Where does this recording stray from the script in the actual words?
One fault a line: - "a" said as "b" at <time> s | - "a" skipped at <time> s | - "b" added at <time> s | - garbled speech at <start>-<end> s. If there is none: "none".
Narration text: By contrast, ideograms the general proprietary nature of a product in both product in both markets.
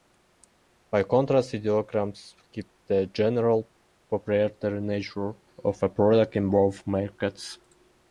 - "keep" added at 2.5 s
- "product in both" skipped at 6.9 s